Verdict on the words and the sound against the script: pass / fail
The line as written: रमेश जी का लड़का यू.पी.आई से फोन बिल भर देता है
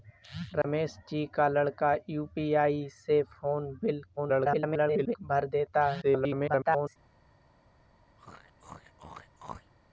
fail